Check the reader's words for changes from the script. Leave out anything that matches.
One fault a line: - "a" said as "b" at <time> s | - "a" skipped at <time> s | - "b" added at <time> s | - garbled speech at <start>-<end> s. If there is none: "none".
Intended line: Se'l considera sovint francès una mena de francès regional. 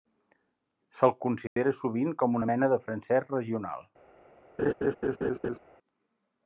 - "francès" said as "com" at 2.2 s